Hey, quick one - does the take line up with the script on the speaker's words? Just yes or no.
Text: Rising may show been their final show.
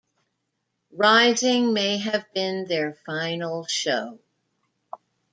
no